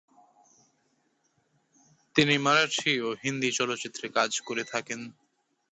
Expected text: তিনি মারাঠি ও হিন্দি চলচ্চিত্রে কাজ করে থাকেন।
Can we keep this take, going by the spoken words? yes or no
yes